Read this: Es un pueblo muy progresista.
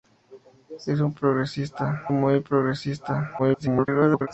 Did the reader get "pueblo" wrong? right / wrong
wrong